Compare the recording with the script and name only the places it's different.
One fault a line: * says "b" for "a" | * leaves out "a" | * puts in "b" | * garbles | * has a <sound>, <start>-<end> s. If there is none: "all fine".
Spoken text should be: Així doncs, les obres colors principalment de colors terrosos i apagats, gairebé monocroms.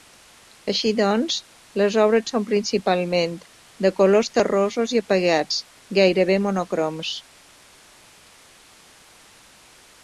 * says "són" for "colors"